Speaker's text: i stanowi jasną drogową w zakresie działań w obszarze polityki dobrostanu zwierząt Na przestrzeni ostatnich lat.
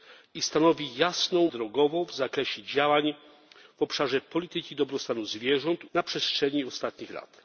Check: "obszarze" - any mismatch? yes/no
no